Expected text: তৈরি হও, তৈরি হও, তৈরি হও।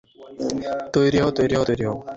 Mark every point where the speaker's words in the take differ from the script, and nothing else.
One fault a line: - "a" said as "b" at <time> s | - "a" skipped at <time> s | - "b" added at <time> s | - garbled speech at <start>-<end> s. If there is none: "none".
none